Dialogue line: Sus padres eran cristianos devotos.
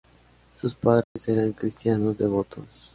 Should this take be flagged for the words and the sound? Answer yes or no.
yes